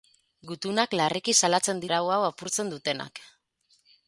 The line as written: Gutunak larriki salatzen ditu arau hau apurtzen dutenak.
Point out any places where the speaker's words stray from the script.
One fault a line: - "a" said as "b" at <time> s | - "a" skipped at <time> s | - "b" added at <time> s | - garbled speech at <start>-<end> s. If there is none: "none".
- "ditu" skipped at 1.9 s